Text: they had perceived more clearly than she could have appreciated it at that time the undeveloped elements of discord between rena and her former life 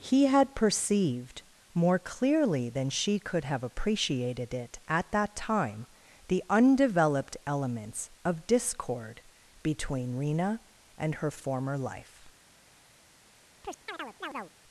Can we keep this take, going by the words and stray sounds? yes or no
no